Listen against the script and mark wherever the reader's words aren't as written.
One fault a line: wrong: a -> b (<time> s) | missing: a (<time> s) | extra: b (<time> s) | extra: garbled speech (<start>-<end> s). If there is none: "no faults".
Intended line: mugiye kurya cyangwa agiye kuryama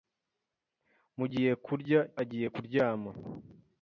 missing: cyangwa (2.0 s)